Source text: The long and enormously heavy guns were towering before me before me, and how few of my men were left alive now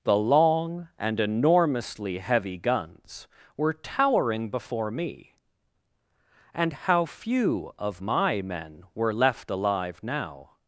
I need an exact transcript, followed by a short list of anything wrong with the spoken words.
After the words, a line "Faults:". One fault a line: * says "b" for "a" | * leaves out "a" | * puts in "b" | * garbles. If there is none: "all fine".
The long and enormously heavy guns were towering before me, and how few of my men were left alive now
Faults:
* leaves out "before me"